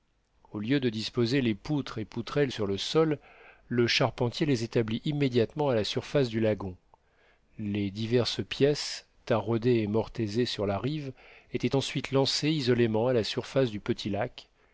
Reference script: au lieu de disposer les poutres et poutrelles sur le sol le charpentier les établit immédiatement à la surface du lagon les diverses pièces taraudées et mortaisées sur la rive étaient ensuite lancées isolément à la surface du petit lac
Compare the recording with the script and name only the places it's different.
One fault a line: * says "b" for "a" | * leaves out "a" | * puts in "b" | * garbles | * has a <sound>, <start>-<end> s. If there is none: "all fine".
all fine